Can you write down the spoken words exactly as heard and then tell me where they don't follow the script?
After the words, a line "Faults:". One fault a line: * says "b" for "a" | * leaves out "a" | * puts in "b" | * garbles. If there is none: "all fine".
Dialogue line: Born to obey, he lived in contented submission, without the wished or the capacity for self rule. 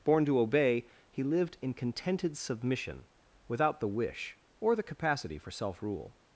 Born to obey, he lived in contented submission, without the wish or the capacity for self rule.
Faults:
* says "wish" for "wished"